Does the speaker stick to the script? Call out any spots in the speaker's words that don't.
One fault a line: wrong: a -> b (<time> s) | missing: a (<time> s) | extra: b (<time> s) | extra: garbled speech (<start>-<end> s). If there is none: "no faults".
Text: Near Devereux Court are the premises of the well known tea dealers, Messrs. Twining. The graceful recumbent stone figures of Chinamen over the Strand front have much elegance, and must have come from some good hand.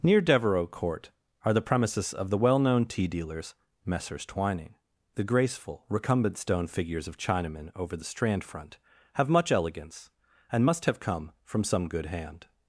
no faults